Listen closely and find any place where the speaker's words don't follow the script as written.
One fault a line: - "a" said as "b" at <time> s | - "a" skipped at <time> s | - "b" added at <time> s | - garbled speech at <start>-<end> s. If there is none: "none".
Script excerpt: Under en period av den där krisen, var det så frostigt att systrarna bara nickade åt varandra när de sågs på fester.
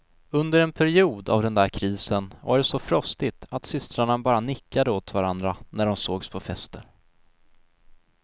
none